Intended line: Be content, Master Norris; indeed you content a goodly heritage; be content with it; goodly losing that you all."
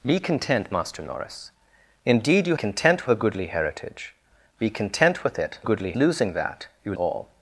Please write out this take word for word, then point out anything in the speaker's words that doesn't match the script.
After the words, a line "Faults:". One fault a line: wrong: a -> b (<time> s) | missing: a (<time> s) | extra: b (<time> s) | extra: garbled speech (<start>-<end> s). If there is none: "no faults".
Be content, Master Norris; indeed you content a goodly heritage; be content with it; goodly losing that you all."
Faults:
no faults